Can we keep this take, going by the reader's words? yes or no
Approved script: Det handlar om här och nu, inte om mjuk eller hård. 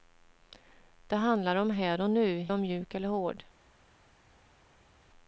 no